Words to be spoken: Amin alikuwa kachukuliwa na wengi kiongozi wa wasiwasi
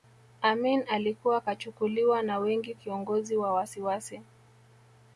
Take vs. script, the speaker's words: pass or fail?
pass